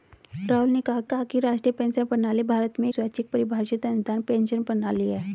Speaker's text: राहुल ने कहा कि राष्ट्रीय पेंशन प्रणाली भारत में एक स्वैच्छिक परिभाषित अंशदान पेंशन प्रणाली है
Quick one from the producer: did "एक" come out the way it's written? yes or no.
no